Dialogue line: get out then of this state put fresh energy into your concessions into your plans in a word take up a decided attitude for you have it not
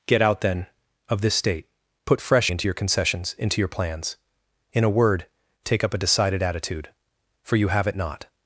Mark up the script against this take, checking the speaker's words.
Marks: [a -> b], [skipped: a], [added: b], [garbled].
get out then of this state put fresh [skipped: energy] into your concessions into your plans in a word take up a decided attitude for you have it not